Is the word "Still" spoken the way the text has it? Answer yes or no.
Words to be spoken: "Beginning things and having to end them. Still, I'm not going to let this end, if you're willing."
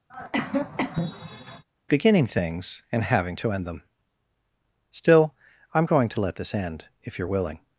yes